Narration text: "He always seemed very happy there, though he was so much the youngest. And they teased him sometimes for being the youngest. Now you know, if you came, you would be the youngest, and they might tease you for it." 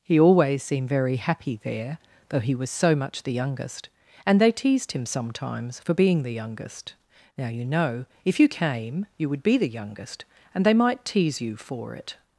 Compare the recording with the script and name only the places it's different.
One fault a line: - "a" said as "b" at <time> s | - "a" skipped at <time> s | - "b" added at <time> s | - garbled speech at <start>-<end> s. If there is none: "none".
none